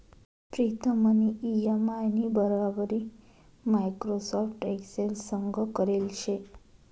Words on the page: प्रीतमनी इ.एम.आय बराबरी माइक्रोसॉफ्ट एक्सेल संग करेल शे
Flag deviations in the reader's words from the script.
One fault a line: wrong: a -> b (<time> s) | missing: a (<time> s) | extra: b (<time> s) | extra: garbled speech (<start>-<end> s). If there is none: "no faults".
extra: नी (2.1 s)